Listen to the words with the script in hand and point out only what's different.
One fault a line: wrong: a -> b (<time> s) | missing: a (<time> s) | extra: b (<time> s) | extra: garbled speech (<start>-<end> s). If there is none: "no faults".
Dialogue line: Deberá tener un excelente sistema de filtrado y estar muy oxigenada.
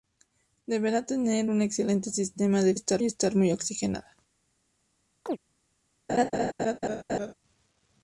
wrong: filtrado -> estar (2.7 s)